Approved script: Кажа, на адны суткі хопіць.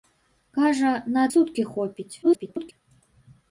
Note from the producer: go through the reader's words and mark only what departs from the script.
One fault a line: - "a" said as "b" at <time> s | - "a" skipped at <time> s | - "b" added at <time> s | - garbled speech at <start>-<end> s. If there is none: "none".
- "адны" skipped at 1.2 s
- garbled speech at 2.2-2.7 s